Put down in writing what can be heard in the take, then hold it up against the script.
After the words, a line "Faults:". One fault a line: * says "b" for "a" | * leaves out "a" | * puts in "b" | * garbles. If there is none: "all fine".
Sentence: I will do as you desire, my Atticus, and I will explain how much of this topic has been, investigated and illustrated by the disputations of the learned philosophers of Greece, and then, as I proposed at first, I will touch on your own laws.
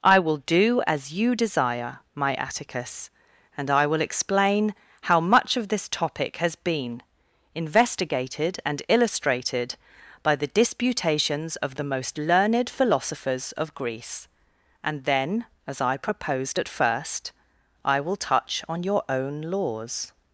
I will do as you desire, my Atticus, and I will explain how much of this topic has been, investigated and illustrated by the disputations of the most learned philosophers of Greece, and then, as I proposed at first, I will touch on your own laws.
Faults:
* puts in "most"